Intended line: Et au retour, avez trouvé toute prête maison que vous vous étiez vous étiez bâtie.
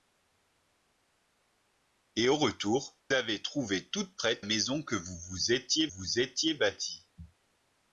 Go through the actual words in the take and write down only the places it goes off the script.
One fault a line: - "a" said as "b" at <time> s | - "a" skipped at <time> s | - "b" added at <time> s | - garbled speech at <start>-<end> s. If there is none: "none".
none